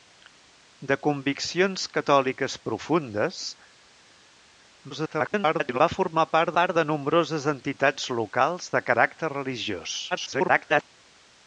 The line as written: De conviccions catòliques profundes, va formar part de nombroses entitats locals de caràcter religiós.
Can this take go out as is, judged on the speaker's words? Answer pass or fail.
fail